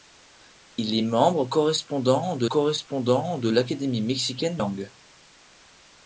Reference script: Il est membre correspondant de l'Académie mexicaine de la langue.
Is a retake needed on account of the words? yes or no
yes